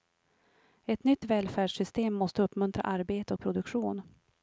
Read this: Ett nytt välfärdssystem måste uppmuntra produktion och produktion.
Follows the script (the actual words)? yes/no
no